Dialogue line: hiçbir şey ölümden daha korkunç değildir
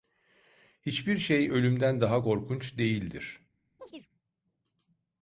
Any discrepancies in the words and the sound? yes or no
yes